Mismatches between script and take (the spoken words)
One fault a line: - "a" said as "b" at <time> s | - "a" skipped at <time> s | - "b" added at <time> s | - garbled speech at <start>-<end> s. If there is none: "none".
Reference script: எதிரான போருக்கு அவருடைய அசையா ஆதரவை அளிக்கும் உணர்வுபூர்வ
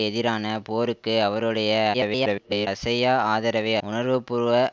- garbled speech at 1.9-2.7 s
- "அளிக்கும்" skipped at 3.8 s